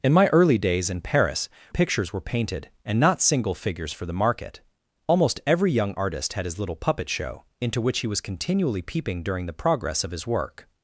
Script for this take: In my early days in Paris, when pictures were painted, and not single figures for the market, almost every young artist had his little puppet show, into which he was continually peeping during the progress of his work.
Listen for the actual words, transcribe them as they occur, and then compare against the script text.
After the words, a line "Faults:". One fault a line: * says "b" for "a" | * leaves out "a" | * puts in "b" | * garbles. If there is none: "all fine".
In my early days in Paris, pictures were painted, and not single figures for the market, almost every young artist had his little puppet show, into which he was continually peeping during the progress of his work.
Faults:
* leaves out "when"